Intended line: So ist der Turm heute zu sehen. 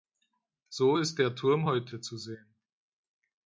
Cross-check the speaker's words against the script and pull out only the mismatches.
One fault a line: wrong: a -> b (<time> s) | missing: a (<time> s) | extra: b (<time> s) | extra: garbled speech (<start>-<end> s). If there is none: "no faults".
no faults